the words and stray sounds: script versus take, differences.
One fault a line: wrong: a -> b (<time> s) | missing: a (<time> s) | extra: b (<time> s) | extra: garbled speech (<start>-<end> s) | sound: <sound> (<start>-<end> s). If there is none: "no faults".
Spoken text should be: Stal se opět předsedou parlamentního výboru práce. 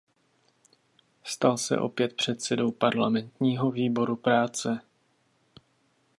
no faults